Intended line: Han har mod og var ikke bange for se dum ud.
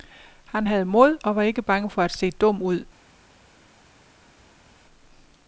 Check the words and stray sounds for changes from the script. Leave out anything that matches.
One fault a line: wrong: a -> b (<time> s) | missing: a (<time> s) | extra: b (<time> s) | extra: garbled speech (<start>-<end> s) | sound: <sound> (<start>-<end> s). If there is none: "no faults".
wrong: har -> havde (0.6 s)
extra: at (2.0 s)